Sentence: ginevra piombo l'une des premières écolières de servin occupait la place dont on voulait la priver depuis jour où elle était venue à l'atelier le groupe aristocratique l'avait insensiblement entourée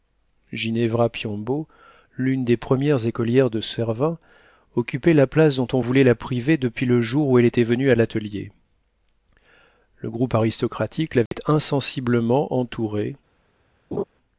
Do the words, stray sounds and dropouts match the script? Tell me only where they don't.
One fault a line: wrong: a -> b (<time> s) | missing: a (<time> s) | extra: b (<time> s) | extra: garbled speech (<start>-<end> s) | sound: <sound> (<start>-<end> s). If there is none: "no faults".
extra: le (6.9 s)
sound: dropout (11.3-11.3 s)
sound: laugh (13.9-14.0 s)